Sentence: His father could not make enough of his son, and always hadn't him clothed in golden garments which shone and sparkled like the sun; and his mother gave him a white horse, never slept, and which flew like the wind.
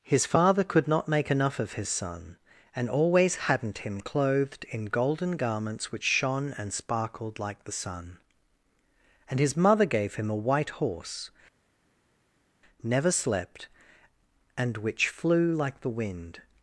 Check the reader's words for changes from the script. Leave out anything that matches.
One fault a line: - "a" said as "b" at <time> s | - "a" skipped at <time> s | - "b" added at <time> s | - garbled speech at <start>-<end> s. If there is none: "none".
none